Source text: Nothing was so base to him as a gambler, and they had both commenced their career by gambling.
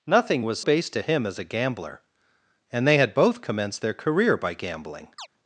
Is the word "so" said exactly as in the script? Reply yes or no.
no